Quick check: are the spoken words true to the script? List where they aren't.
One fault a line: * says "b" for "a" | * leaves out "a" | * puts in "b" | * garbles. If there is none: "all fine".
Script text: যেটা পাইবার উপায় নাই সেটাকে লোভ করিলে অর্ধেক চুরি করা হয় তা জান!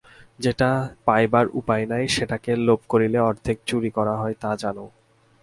all fine